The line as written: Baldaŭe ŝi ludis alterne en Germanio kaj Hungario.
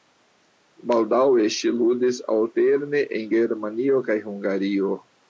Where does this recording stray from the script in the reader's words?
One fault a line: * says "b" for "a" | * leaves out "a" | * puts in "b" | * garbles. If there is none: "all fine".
all fine